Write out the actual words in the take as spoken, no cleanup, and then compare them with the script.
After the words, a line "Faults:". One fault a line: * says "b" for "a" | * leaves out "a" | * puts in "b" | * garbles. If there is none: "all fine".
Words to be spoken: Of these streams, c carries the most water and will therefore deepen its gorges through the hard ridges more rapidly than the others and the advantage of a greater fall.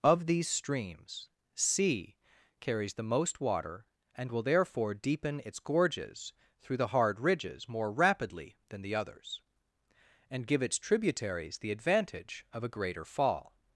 Of these streams, c carries the most water and will therefore deepen its gorges through the hard ridges more rapidly than the others and give its tributaries the advantage of a greater fall.
Faults:
* puts in "give its tributaries"